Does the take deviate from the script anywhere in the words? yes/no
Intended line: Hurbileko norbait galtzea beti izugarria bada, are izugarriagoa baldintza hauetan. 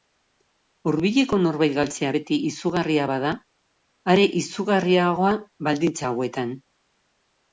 no